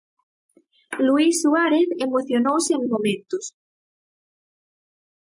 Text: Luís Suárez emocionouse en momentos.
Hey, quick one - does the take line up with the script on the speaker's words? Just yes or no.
yes